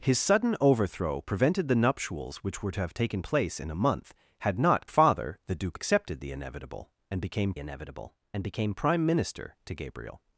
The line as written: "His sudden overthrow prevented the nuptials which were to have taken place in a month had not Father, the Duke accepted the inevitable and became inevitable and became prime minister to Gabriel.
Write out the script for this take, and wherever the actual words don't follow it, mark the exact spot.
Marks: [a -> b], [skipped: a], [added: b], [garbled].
"His sudden overthrow prevented the nuptials which were to have taken place in a month had not Father, the Duke accepted the inevitable and became inevitable and became prime minister to Gabriel.